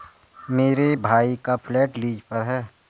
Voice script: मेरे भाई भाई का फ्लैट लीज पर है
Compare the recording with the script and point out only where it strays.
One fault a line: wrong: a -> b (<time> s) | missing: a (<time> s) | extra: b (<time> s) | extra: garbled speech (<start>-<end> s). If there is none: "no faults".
missing: भाई (1.4 s)